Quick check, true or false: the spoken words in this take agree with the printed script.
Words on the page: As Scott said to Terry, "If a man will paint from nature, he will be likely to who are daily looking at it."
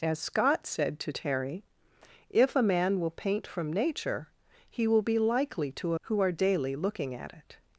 true